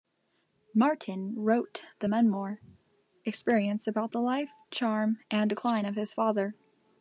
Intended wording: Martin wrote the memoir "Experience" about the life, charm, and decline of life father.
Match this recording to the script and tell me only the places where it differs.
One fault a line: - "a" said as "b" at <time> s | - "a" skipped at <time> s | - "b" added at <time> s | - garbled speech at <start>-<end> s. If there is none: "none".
- "life" said as "his" at 5.9 s